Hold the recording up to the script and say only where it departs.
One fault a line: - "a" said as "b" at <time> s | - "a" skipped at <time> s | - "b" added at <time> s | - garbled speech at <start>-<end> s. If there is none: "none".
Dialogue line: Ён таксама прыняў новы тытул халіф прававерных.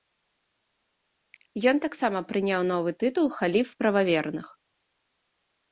none